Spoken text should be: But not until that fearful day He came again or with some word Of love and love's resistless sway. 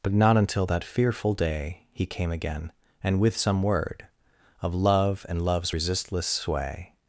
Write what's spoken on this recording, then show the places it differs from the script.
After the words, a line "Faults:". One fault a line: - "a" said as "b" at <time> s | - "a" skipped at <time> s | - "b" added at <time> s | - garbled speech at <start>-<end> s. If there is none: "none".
But not until that fearful day He came again and with some word Of love and love's resistless sway.
Faults:
- "or" said as "and" at 3.0 s